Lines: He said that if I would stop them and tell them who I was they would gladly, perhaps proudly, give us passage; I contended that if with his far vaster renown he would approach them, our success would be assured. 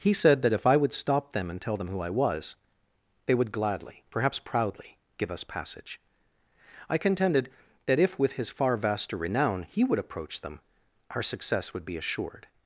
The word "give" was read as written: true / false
true